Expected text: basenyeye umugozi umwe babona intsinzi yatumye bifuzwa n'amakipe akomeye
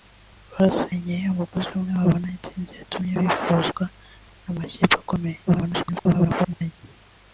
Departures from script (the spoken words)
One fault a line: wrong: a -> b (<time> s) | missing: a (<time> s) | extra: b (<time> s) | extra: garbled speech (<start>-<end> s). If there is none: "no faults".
extra: garbled speech (5.5-6.7 s)